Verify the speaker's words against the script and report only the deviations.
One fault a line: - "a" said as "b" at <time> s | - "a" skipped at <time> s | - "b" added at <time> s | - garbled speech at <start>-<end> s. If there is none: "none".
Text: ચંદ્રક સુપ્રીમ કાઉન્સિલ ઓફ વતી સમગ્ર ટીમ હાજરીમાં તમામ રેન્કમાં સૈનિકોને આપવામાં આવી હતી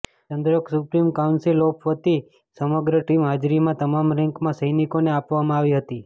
none